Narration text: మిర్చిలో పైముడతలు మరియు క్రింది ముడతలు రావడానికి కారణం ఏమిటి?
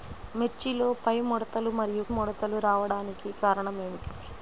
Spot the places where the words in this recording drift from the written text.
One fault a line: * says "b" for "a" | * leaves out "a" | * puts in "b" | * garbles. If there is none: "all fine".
* leaves out "క్రింది"